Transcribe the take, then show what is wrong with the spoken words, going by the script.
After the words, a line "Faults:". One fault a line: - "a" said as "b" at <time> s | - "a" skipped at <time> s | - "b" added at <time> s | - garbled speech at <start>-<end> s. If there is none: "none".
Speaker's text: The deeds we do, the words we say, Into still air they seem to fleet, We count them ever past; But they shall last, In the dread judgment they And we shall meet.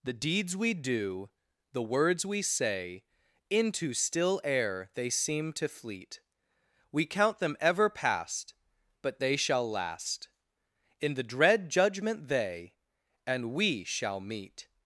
The deeds we do, the words we say, Into still air they seem to fleet, We count them ever past; But they shall last, In the dread judgment they And we shall meet.
Faults:
none